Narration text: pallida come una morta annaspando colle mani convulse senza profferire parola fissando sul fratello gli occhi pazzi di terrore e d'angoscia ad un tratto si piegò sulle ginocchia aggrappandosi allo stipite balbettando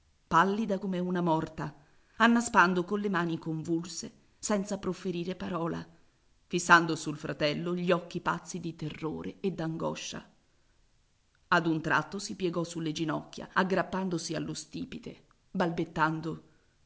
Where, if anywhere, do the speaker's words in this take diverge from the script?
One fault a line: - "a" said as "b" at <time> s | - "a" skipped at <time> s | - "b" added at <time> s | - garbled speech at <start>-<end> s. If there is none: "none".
none